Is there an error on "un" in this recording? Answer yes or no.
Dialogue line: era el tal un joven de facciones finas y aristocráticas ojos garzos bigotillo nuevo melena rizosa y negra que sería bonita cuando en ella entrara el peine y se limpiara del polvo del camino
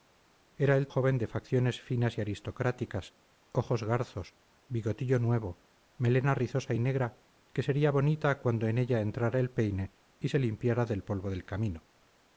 yes